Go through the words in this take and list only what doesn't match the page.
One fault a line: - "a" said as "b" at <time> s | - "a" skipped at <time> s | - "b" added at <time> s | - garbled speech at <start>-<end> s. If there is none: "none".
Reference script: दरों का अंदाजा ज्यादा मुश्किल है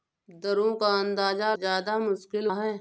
none